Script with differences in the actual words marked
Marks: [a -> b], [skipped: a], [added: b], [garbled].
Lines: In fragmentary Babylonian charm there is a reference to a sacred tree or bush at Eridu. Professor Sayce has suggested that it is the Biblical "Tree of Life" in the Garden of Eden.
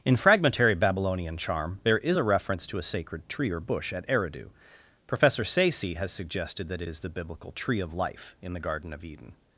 In fragmentary Babylonian charm there is a reference to a sacred tree or bush at Eridu. Professor Sayce has suggested that it is the Biblical "Tree of Life" in the Garden of Eden.